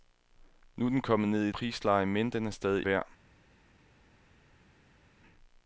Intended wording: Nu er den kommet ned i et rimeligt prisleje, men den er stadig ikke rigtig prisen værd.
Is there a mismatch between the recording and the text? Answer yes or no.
yes